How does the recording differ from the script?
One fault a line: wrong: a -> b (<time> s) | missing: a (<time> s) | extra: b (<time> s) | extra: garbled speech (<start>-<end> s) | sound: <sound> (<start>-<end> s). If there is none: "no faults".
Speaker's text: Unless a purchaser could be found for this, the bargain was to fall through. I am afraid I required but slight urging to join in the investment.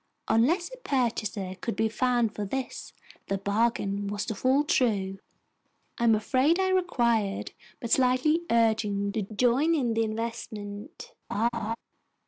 sound: laugh (11.3-11.8 s)